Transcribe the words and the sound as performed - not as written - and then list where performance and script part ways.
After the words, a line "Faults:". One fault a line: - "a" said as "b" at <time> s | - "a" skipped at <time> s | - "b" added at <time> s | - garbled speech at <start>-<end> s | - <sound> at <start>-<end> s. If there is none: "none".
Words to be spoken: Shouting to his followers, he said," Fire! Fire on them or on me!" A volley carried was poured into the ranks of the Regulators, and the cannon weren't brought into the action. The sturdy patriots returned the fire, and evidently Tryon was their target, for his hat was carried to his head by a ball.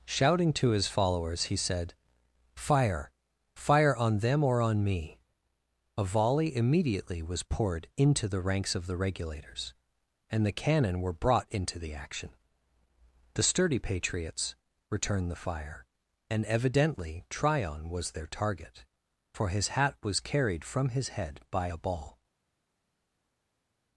Shouting to his followers, he said," Fire! Fire on them or on me!" A volley immediately was poured into the ranks of the Regulators, and the cannon were brought into the action. The sturdy patriots returned the fire, and evidently Tryon was their target, for his hat was carried from his head by a ball.
Faults:
- "carried" said as "immediately" at 6.5 s
- "weren't" said as "were" at 11.0 s
- "to" said as "from" at 20.6 s